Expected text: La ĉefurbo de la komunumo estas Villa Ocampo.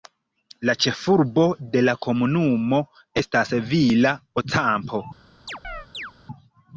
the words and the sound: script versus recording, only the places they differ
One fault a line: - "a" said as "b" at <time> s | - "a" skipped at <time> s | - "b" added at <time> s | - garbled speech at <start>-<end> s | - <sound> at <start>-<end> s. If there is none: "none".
- chirp at 5.5-6.1 s